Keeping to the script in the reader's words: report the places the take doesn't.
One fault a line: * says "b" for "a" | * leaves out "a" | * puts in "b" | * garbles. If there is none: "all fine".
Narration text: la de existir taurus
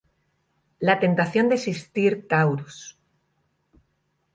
* puts in "tentación"